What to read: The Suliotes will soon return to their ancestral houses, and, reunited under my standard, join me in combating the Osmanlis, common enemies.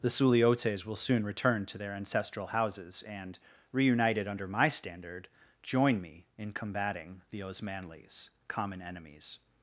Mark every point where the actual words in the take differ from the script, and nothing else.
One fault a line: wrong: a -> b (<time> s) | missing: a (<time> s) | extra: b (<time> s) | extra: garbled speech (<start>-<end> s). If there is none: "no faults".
no faults